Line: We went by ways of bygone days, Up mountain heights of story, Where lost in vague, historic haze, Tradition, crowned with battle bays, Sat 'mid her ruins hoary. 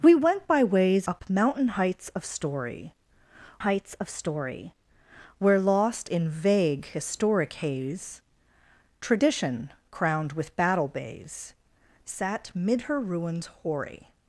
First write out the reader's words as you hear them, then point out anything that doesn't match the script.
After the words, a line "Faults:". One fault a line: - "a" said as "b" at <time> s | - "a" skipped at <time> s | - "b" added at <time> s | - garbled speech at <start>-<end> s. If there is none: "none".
We went by ways Up mountain heights of story heights of story, Where lost in vague, historic haze, Tradition, crowned with battle bays, Sat 'mid her ruins hoary.
Faults:
- "of bygone days Up mountain" said as "Up mountain heights of story" at 1.1 s